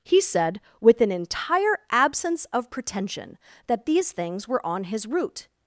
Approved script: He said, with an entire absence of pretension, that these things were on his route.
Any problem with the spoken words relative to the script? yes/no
no